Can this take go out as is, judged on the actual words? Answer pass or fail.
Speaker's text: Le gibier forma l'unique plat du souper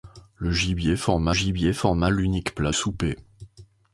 fail